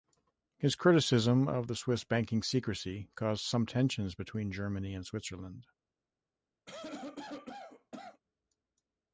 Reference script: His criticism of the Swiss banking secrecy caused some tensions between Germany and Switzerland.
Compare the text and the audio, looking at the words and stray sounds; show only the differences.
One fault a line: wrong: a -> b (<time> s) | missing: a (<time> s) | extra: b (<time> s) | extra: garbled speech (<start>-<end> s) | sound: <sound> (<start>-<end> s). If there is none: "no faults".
sound: cough (6.7-8.2 s)